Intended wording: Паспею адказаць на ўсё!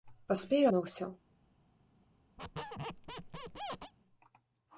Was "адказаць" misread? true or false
true